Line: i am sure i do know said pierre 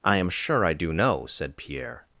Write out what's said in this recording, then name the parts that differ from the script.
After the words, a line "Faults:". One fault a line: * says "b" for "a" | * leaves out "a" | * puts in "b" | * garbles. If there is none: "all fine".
i am sure i do know said pierre
Faults:
all fine